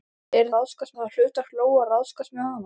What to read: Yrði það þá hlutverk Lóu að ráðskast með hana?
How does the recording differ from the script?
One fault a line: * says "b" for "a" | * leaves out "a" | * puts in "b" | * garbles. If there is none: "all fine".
* says "ráðskast" for "það"